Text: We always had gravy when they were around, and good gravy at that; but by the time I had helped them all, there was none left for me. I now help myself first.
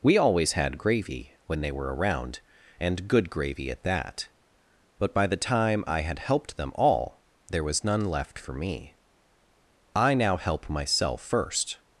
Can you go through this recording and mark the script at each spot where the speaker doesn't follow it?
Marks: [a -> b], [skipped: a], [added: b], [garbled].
We always had gravy when they were around, and good gravy at that; but by the time I had helped them all, there was none left for me. I now help myself first.